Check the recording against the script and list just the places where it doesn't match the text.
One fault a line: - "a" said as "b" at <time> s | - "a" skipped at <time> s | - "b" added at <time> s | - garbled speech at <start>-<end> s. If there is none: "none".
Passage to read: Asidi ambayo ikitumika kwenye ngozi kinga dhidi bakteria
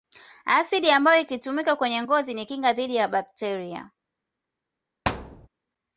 - "ni" added at 2.3 s
- "ya" added at 2.9 s